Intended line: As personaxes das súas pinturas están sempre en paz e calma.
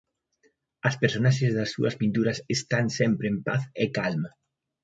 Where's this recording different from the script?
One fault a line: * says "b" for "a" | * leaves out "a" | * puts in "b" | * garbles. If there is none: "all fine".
all fine